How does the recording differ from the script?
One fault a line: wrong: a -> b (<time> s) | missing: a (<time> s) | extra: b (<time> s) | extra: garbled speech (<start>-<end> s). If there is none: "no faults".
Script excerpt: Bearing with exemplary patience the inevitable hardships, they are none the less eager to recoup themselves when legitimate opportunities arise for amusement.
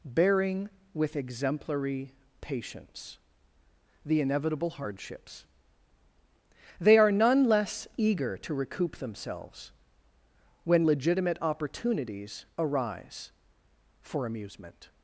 missing: the (7.4 s)